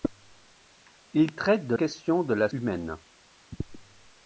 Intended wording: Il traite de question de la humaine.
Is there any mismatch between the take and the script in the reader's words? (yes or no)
no